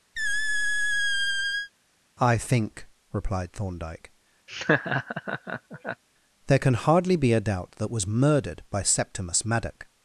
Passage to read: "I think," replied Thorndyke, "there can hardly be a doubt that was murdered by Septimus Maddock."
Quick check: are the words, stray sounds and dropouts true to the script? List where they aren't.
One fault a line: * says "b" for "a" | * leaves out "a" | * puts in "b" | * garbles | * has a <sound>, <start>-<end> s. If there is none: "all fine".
* has a squeak, 0.2-1.7 s
* has a laugh, 4.5-6.0 s